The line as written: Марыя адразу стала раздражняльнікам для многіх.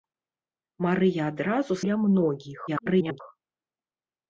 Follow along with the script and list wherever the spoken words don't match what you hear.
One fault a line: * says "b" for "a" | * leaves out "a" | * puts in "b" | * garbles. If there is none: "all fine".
* leaves out "стала раздражняльнікам"
* garbles